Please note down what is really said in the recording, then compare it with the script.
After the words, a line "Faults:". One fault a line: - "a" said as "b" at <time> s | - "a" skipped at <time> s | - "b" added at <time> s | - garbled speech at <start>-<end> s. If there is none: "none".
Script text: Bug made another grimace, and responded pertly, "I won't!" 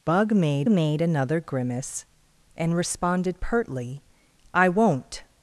Bug made made another grimace, and responded pertly, "I won't!"
Faults:
- "made" added at 0.7 s